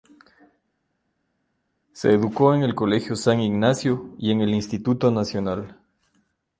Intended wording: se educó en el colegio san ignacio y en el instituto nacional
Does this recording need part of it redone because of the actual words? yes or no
no